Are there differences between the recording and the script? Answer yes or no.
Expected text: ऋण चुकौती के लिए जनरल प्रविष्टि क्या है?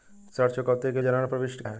yes